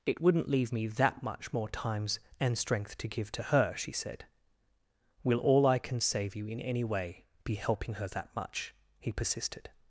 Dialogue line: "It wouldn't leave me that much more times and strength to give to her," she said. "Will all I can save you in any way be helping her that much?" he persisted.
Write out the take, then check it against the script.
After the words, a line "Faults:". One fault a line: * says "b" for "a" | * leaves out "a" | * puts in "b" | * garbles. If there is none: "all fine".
"It wouldn't leave me that much more times and strength to give to her," she said. "Will all I can save you in any way be helping her that much?" he persisted.
Faults:
all fine